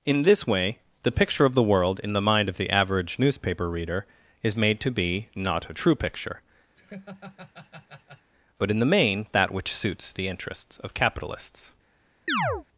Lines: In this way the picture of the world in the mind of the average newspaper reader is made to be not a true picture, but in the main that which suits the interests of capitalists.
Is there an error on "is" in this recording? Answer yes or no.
no